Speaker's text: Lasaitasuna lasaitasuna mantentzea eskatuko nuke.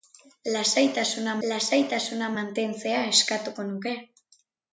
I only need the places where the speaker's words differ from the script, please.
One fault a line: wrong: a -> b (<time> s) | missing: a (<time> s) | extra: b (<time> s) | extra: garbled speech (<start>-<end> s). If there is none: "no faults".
no faults